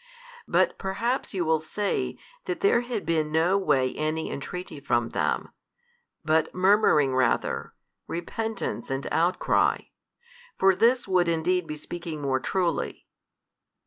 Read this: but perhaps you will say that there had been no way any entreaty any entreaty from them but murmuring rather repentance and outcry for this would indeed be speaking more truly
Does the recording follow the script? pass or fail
fail